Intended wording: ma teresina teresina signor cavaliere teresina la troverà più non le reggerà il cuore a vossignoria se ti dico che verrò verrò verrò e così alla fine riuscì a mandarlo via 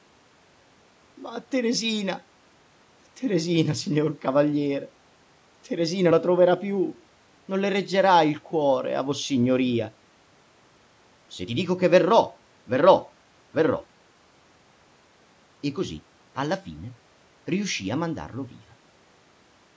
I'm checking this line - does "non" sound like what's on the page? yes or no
yes